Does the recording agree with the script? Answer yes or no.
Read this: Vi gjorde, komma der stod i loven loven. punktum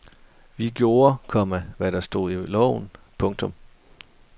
no